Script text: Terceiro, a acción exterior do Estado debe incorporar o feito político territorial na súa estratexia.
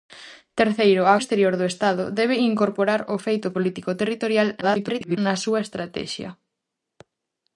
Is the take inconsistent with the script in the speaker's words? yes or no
yes